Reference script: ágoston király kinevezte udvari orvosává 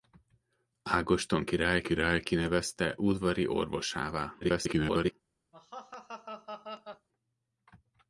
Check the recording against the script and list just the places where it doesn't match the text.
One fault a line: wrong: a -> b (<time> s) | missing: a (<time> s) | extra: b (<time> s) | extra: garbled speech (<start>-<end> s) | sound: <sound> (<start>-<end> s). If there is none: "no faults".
extra: király (1.8 s)
extra: garbled speech (4.4-5.1 s)
sound: laugh (5.5-7.1 s)